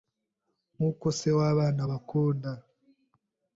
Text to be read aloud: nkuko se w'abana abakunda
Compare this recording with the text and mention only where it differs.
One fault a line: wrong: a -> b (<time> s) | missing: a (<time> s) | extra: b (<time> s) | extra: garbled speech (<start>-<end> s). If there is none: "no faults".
no faults